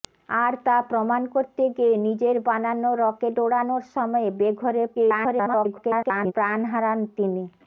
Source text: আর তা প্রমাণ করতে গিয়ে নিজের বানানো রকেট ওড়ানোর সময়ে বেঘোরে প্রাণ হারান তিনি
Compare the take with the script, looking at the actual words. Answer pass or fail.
fail